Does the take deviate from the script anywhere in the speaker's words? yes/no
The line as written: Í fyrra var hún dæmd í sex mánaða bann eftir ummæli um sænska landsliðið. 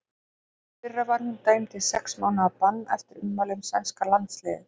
no